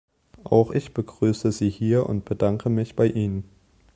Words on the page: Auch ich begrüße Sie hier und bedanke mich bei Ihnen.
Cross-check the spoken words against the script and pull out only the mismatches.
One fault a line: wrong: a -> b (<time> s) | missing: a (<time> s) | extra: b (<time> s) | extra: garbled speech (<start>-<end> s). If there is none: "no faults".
no faults